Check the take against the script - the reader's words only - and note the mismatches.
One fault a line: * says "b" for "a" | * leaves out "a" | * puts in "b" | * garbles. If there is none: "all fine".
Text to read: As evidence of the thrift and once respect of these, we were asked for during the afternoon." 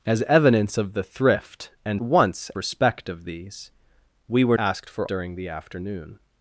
all fine